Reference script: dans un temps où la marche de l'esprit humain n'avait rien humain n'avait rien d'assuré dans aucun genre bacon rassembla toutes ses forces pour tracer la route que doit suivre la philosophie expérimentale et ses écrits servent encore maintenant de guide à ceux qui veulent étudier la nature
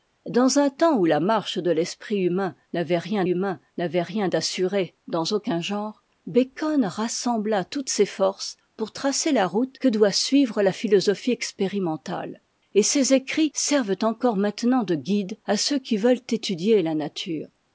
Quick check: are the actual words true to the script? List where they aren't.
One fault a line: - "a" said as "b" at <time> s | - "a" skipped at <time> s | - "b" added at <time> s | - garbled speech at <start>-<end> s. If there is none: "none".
none